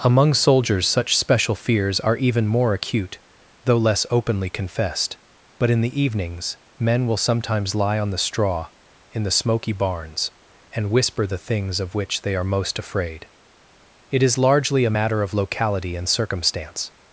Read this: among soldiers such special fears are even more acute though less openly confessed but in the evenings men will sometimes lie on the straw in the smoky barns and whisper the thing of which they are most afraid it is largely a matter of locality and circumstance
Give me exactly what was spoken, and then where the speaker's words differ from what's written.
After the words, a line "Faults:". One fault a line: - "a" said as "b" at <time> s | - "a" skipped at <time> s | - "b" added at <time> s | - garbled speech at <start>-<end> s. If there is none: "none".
among soldiers such special fears are even more acute though less openly confessed but in the evenings men will sometimes lie on the straw in the smoky barns and whisper the things of which they are most afraid it is largely a matter of locality and circumstance
Faults:
- "thing" said as "things" at 11.4 s